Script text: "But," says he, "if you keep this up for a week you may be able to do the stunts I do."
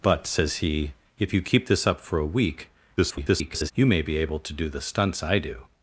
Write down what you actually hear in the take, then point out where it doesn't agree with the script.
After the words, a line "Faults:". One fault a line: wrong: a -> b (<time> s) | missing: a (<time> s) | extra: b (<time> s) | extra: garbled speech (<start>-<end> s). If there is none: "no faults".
"But," says he, "if you keep this up for a week [garbled] you may be able to do the stunts I do."
Faults:
extra: garbled speech (3.0-3.7 s)